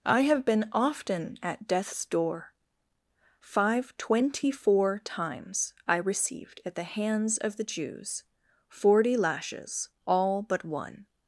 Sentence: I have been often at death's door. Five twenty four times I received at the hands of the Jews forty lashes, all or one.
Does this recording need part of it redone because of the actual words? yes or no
yes